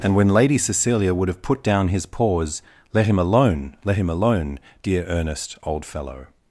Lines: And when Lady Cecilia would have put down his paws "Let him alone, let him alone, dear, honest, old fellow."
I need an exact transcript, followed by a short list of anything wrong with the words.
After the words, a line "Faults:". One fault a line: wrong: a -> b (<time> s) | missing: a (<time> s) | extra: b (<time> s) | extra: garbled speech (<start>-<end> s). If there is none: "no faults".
And when Lady Cecilia would have put down his paws "Let him alone, let him alone, dear, earnest, old fellow."
Faults:
wrong: honest -> earnest (5.0 s)